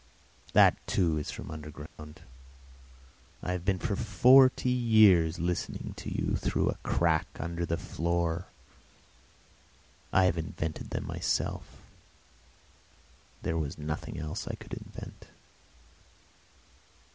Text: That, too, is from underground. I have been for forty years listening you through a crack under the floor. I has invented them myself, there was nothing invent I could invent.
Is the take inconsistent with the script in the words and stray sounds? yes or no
yes